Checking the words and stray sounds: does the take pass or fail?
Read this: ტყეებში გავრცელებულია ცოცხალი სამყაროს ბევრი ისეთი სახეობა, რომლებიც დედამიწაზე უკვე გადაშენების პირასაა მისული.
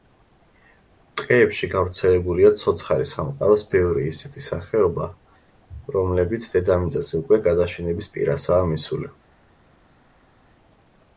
pass